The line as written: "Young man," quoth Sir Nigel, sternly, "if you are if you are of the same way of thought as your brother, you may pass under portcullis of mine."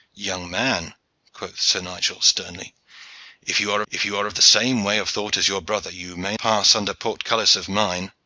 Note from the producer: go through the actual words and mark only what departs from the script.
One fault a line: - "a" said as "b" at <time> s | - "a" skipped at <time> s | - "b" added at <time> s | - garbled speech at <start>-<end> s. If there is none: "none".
none